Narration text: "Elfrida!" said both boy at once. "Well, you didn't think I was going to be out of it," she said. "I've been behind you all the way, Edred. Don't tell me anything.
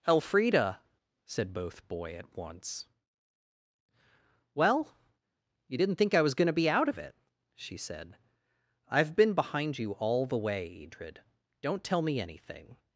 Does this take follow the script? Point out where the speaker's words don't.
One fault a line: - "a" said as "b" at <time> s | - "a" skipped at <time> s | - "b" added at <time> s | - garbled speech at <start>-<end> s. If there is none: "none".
none